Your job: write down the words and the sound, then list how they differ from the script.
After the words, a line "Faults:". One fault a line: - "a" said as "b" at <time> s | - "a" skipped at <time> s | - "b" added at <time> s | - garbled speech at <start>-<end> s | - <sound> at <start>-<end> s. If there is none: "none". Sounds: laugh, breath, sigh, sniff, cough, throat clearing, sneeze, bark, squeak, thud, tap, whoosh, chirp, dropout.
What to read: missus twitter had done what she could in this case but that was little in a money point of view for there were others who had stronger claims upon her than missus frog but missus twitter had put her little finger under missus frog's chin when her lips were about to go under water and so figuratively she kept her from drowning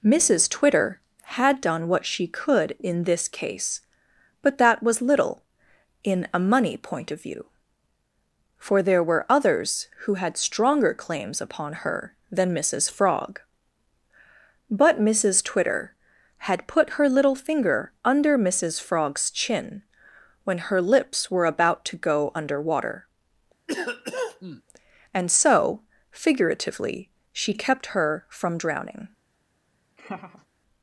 missus twitter had done what she could in this case but that was little in a money point of view for there were others who had stronger claims upon her than missus frog but missus twitter had put her little finger under missus frog's chin when her lips were about to go under water and so figuratively she kept her from drowning
Faults:
- cough at 23.7-24.6 s
- laugh at 30.0-30.5 s